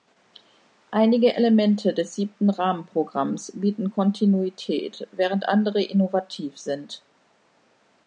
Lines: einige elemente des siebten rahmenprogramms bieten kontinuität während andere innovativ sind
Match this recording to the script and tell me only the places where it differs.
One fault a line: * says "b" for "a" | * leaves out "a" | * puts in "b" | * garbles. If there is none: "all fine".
all fine